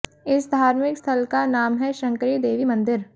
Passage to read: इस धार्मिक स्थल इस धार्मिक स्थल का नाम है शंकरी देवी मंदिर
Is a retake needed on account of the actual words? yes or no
yes